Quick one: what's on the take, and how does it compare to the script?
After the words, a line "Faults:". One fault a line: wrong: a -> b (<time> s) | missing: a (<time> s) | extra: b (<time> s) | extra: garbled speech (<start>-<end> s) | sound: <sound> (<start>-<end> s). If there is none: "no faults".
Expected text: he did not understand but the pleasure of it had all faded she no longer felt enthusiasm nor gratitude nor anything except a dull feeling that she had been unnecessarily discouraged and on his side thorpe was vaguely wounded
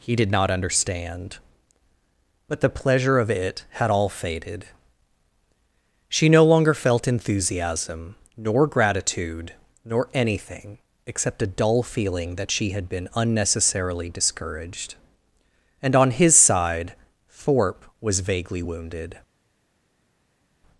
he did not understand but the pleasure of it had all faded she no longer felt enthusiasm nor gratitude nor anything except a dull feeling that she had been unnecessarily discouraged and on his side thorpe was vaguely wounded
Faults:
no faults